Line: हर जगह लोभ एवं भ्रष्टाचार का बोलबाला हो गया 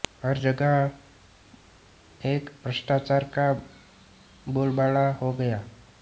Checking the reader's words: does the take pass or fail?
fail